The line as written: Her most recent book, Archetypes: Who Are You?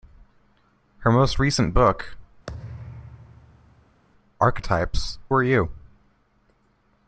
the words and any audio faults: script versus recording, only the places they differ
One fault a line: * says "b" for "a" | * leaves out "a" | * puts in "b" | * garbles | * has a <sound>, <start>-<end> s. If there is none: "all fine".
* has a thud, 2.5-4.0 s
* leaves out "Who"